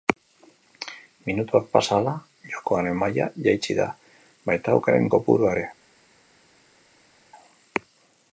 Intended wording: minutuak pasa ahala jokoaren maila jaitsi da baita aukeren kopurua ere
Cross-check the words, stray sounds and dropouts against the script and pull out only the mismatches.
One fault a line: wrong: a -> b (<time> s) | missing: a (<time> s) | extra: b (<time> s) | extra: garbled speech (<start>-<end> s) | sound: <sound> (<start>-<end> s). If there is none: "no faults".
no faults